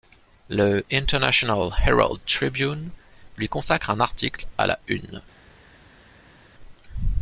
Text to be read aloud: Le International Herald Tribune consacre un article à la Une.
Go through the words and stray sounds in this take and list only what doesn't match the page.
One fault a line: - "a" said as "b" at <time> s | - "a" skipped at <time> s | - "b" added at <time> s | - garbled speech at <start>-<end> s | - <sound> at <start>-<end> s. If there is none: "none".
- "lui" added at 3.4 s